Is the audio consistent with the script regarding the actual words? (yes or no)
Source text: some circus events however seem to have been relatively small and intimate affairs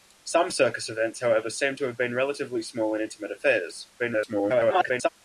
no